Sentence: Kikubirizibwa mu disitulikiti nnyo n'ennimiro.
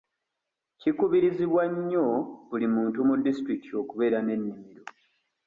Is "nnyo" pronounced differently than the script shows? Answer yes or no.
yes